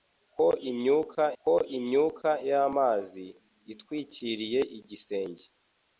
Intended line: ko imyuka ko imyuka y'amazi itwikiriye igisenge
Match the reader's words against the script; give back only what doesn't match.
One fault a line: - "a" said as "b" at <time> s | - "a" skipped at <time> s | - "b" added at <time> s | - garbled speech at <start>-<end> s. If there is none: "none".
none